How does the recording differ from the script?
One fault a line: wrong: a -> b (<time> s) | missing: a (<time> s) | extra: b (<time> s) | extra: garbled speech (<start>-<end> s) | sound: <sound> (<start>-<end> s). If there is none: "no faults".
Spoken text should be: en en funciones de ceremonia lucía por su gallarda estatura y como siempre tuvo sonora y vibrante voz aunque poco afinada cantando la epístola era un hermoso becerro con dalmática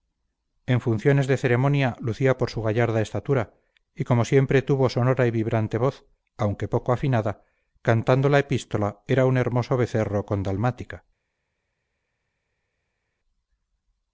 missing: en (0.8 s)